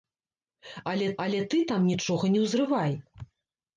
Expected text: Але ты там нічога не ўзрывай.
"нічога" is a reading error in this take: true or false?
false